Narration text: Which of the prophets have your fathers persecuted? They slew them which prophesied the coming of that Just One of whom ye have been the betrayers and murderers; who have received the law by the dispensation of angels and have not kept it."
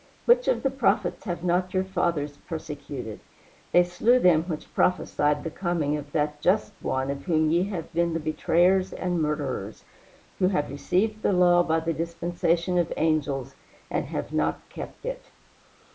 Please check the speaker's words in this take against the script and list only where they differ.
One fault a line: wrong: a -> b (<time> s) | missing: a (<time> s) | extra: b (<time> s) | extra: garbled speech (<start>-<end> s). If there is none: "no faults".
extra: not (1.4 s)